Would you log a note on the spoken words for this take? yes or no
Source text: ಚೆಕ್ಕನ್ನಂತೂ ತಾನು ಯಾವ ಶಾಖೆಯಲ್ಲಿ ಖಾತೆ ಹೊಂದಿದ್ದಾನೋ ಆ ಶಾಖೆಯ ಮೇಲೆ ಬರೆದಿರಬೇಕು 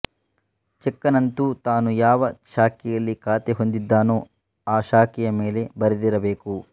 no